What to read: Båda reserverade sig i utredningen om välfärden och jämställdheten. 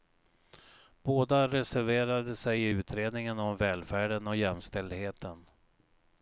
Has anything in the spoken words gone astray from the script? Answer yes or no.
no